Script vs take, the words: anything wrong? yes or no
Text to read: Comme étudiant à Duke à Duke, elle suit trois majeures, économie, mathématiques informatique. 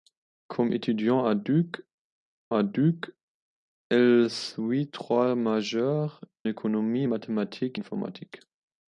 no